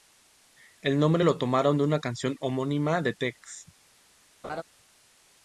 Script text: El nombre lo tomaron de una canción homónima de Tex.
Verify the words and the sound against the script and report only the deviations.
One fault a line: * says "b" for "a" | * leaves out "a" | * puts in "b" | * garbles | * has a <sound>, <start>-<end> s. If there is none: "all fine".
* has a laugh, 4.4-4.6 s